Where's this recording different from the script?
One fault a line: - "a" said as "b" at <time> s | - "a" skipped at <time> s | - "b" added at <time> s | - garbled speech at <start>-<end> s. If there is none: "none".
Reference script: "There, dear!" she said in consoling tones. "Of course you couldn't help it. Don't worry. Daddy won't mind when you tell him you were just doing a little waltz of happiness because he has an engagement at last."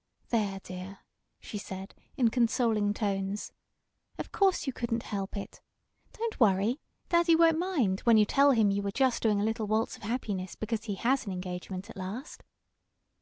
none